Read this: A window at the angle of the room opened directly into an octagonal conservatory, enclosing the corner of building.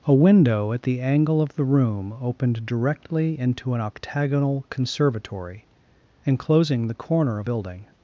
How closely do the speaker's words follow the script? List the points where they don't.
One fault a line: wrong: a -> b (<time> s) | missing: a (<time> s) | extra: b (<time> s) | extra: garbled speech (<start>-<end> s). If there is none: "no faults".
no faults